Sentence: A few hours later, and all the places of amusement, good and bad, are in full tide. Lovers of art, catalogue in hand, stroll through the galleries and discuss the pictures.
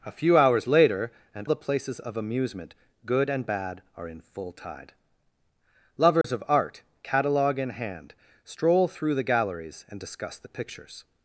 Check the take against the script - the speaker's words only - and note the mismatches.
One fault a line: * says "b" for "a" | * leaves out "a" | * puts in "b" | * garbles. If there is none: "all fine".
* leaves out "all"